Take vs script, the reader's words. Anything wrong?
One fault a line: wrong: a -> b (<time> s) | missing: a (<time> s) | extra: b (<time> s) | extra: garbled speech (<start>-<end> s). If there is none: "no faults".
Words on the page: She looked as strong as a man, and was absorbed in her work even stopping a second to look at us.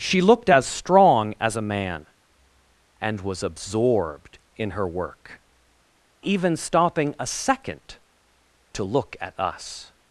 no faults